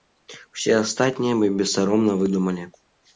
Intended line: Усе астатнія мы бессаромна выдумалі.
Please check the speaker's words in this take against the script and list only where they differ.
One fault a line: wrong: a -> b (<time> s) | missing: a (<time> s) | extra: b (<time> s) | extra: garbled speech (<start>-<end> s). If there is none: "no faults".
no faults